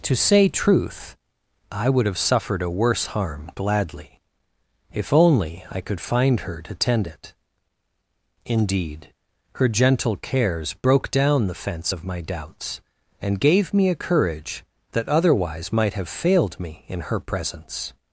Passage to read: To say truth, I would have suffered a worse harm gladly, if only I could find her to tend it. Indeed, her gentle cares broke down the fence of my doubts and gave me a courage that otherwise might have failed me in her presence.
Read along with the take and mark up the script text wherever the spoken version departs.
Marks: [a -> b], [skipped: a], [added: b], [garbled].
To say truth, I would have suffered a worse harm gladly, if only I could find her to tend it. Indeed, her gentle cares broke down the fence of my doubts and gave me a courage that otherwise might have failed me in her presence.